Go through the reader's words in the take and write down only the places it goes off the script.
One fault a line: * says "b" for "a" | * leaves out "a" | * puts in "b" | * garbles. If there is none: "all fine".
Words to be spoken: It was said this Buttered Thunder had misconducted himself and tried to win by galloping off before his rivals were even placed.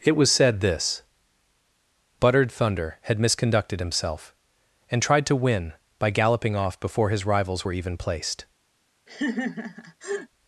all fine